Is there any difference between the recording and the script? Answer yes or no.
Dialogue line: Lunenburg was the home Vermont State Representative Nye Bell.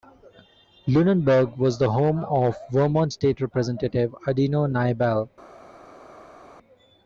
yes